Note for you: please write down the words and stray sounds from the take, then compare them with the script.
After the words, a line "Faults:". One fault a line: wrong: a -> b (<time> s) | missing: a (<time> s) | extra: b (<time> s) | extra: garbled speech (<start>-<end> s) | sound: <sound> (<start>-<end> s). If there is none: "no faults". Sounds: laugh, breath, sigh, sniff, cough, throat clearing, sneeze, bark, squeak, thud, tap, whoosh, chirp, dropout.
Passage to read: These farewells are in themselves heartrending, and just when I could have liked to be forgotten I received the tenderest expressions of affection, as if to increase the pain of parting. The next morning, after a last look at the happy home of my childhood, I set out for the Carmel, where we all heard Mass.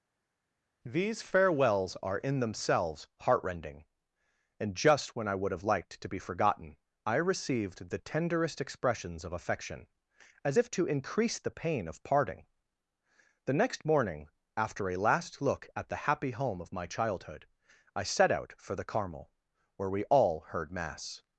These farewells are in themselves heartrending, and just when I would have liked to be forgotten I received the tenderest expressions of affection, as if to increase the pain of parting. The next morning, after a last look at the happy home of my childhood, I set out for the Carmel, where we all heard Mass.
Faults:
wrong: could -> would (5.3 s)